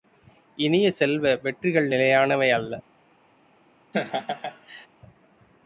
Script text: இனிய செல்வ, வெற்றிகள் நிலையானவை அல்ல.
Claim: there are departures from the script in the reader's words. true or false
false